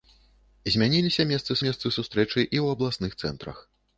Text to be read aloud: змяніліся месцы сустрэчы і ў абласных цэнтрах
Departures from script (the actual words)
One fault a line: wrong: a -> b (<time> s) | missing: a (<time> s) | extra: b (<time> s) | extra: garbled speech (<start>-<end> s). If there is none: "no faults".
extra: месцы (1.7 s)